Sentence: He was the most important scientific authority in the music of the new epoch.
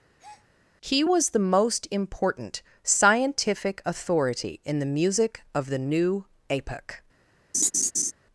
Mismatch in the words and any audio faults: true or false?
true